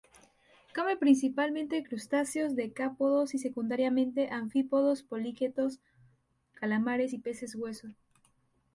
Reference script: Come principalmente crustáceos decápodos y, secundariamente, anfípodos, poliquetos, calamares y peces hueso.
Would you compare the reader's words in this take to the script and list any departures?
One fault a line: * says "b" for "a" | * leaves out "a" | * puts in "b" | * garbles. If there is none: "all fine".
all fine